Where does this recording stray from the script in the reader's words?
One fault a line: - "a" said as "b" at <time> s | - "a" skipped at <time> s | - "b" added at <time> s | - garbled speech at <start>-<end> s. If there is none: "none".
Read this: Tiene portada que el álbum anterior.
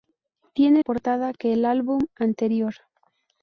none